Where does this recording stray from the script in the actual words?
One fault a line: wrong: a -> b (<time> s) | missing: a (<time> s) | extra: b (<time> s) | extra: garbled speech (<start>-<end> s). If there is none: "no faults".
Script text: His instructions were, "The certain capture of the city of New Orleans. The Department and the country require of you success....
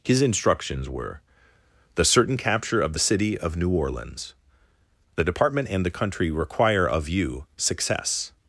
no faults